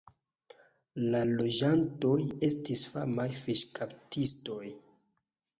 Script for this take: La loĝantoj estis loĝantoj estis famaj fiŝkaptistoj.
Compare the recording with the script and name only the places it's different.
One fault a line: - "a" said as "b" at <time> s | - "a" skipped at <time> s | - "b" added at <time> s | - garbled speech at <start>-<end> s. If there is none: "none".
- "loĝantoj estis" skipped at 2.8 s